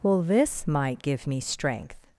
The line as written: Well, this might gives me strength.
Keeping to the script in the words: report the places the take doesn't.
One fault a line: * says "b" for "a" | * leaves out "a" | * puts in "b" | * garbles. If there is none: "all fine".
* says "give" for "gives"